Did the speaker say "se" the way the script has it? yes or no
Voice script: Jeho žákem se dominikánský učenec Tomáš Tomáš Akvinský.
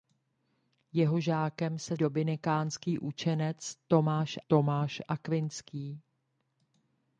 yes